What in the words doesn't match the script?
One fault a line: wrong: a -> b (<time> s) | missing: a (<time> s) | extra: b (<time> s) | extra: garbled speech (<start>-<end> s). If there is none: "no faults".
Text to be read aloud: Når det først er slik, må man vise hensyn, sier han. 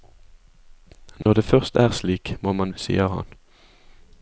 missing: vise hensyn (2.7 s)